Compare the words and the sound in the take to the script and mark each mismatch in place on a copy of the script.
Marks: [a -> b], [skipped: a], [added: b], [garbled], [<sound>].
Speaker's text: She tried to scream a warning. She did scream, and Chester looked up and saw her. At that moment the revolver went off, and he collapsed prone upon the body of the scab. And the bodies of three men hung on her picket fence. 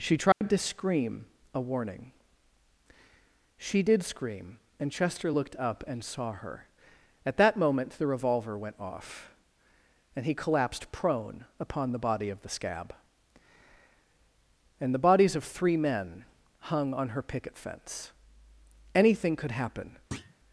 She tried [dropout] to scream a warning. She did scream, and Chester looked up and saw her. At that moment the revolver went off, and he collapsed prone upon the body of the scab. And the bodies of three men hung on her picket fence. [added: Anything could happen] [thud]